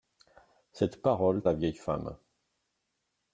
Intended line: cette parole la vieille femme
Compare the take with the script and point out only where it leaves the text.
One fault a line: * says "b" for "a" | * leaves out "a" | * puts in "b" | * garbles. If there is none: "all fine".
all fine